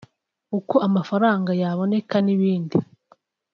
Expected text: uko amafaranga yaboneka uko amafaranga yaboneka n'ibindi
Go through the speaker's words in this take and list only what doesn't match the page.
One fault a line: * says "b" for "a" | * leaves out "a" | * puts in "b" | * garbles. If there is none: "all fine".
* leaves out "uko amafaranga yaboneka"